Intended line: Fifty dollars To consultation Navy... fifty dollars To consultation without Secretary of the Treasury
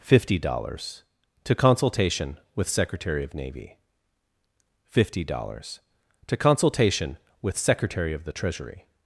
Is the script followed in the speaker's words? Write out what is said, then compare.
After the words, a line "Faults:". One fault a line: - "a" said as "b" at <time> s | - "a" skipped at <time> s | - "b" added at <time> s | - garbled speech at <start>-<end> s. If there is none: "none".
Fifty dollars To consultation with Secretary of Navy... fifty dollars To consultation with Secretary of the Treasury
Faults:
- "with Secretary of" added at 2.5 s
- "without" said as "with" at 7.4 s